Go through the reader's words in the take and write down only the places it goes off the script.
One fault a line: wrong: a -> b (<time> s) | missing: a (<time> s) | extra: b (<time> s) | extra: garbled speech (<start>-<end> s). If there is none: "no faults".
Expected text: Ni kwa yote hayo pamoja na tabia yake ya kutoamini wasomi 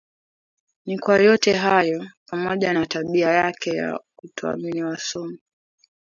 no faults